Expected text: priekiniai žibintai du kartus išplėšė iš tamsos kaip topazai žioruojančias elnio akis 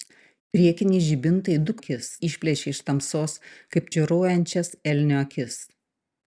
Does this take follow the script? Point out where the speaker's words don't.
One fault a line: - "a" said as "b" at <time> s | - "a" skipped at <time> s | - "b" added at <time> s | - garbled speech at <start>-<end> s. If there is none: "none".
- "kartus" said as "akis" at 1.8 s
- "topazai" skipped at 3.9 s